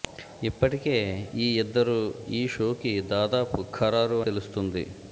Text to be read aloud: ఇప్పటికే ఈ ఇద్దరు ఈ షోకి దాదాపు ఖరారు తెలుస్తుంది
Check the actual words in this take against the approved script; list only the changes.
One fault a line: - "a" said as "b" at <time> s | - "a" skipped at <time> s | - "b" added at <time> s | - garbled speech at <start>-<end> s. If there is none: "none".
none